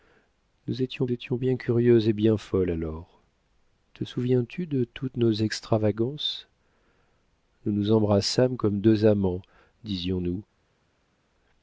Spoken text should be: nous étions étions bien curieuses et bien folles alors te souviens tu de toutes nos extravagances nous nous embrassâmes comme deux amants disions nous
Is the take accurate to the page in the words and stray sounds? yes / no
yes